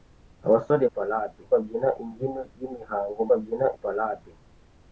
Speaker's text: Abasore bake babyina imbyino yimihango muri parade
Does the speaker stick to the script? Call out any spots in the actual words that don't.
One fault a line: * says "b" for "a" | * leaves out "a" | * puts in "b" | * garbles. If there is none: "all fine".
* says "parade" for "bake"
* says "babyina" for "muri"